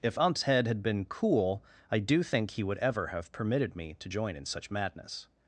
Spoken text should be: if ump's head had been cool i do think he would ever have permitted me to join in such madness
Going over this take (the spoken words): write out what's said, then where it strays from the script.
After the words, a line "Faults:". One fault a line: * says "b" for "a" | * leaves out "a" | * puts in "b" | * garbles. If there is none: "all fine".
if ump's head had been cool i do think he would ever have permitted me to join in such madness
Faults:
all fine